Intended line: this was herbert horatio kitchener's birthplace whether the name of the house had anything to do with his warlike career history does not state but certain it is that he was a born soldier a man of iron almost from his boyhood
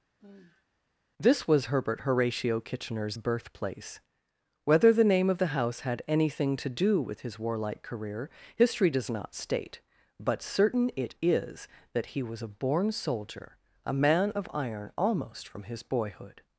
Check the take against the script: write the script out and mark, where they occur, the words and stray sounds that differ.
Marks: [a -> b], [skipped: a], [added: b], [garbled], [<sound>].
[sigh] this was herbert horatio kitchener's birthplace whether the name of the house had anything to do with his warlike career history does not state but certain it is that he was a born soldier a man of iron almost from his boyhood